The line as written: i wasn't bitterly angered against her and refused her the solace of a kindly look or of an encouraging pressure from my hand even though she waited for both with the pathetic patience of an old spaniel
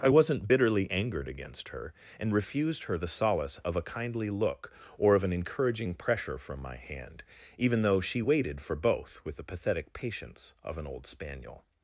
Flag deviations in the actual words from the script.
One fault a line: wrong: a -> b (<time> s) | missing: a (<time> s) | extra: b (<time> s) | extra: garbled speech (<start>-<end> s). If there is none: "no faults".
no faults